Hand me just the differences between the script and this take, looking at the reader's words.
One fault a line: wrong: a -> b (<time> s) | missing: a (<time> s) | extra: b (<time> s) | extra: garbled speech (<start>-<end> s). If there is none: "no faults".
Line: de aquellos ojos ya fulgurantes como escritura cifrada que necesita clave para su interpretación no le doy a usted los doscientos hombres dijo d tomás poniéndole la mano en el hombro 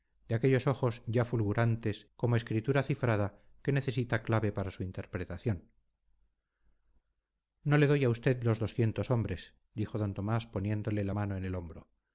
no faults